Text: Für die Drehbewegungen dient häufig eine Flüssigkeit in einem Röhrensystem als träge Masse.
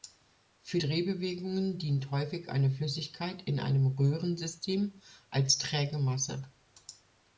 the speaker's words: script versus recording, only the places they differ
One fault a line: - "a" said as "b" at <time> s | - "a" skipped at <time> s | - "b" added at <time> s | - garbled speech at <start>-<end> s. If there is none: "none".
- "die" skipped at 0.8 s